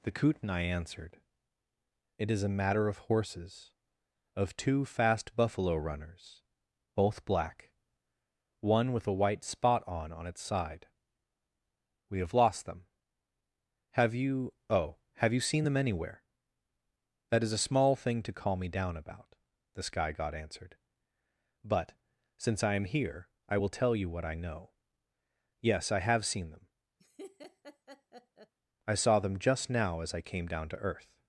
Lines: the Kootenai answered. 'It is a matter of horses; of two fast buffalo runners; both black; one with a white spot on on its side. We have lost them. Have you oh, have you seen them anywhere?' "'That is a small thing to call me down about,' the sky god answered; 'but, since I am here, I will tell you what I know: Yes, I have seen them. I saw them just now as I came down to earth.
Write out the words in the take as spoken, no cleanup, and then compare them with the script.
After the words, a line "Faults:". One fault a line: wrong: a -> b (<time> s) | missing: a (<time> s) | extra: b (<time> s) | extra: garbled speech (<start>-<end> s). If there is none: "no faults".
the Kootenai answered. 'It is a matter of horses; of two fast buffalo runners; both black; one with a white spot on on its side. We have lost them. Have you oh, have you seen them anywhere?' "'That is a small thing to call me down about,' the sky god answered; 'but, since I am here, I will tell you what I know: Yes, I have seen them. I saw them just now as I came down to earth.
Faults:
no faults